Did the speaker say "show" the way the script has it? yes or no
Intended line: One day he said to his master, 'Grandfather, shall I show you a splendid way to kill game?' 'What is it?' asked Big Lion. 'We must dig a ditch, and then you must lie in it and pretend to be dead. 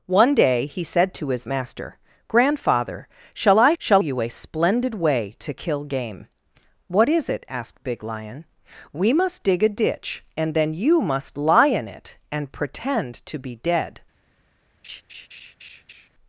no